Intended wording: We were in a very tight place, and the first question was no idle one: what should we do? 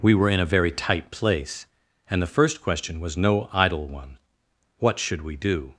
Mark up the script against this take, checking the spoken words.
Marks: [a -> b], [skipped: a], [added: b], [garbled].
We were in a very tight place, and the first question was no idle one: what should we do?